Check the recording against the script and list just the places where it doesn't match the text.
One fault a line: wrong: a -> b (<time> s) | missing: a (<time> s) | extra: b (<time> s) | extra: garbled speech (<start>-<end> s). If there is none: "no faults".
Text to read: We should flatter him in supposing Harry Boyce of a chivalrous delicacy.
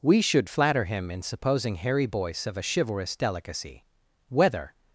extra: Whether (4.3 s)